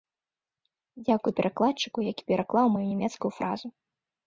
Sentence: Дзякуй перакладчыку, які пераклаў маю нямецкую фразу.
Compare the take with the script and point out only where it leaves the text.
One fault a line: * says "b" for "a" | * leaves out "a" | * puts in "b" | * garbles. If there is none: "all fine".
all fine